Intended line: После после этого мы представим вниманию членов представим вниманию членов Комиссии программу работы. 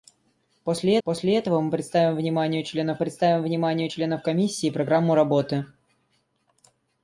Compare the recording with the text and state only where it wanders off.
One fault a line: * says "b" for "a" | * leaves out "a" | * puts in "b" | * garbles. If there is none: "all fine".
all fine